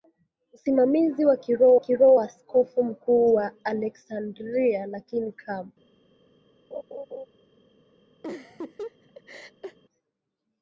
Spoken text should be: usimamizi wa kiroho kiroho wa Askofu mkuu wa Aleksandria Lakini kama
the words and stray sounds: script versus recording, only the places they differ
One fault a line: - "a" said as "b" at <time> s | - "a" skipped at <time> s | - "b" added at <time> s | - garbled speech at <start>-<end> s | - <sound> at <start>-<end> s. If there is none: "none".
- laugh at 6.7-7.3 s
- laugh at 8.2-9.8 s